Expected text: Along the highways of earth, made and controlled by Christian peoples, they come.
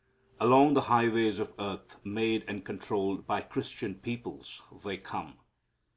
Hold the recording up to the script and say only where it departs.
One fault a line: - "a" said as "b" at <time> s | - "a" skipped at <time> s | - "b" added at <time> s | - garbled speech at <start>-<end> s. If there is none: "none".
none